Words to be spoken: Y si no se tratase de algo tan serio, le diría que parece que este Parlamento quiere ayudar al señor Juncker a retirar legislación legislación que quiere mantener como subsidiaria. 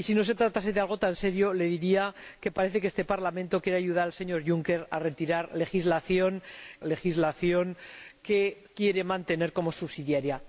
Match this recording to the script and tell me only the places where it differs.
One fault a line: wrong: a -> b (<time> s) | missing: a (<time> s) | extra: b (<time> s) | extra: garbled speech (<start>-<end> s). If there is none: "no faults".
no faults